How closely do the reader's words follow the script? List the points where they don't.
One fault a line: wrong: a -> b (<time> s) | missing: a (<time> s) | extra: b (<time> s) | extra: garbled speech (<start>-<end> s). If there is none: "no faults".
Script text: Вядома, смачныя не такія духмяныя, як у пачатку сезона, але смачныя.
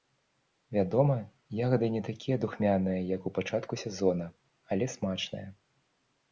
wrong: смачныя -> ягады (1.6 s)